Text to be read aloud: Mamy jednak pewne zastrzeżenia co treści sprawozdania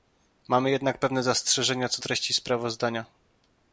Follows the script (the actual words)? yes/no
yes